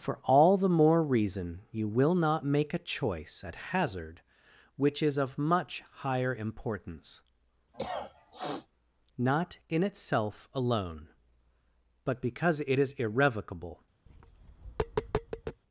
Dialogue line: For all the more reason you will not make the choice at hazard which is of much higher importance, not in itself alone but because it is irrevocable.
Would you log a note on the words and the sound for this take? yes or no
yes